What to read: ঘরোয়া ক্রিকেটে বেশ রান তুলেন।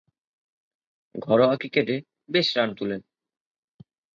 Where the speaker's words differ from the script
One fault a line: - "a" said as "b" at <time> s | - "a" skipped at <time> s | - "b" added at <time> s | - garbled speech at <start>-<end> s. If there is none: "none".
none